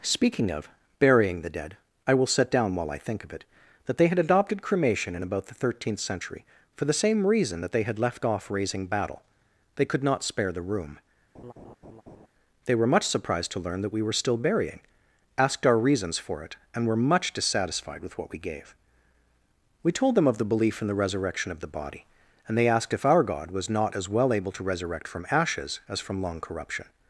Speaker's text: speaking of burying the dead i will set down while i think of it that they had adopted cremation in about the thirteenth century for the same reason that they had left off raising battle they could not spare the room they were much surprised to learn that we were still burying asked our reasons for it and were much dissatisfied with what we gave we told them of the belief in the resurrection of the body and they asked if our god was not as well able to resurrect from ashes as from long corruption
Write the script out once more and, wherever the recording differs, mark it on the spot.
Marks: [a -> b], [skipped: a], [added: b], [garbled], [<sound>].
speaking of burying the dead i will set down while i think of it that they had adopted cremation in about the thirteenth century for the same reason that they had left off raising battle they could not spare the room [laugh] they were much surprised to learn that we were still burying asked our reasons for it and were much dissatisfied with what we gave we told them of the belief in the resurrection of the body and they asked if our god was not as well able to resurrect from ashes as from long corruption